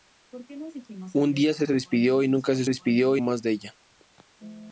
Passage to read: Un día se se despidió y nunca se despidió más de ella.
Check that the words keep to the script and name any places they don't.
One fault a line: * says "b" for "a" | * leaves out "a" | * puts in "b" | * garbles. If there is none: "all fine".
all fine